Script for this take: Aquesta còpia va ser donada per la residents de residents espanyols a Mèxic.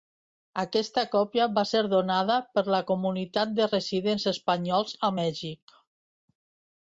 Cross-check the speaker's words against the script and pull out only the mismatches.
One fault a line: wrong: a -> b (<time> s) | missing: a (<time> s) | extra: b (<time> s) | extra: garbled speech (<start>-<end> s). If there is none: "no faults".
wrong: residents -> comunitat (2.9 s)